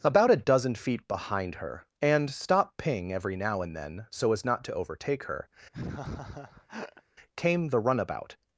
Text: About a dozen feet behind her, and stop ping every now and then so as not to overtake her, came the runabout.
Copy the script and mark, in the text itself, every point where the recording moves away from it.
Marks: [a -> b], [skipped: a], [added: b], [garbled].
About a dozen feet behind her, and stop ping every now and then so as not to overtake her, came the runabout.